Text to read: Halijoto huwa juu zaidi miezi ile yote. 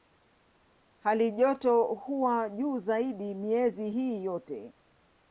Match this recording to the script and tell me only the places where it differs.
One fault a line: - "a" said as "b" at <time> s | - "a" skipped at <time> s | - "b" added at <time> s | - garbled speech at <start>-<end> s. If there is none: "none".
- "ile" said as "hii" at 3.9 s